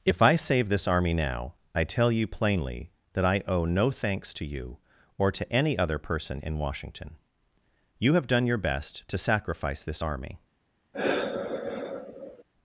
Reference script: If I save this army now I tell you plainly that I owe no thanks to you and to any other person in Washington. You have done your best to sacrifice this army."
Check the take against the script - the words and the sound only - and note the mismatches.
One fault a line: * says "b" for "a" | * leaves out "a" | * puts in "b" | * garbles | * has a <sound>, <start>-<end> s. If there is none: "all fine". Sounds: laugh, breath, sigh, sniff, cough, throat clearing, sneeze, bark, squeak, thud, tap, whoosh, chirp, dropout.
* says "or" for "and"
* has a sigh, 10.9-12.4 s